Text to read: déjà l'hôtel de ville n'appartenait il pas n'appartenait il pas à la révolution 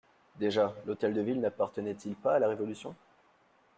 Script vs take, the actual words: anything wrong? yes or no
yes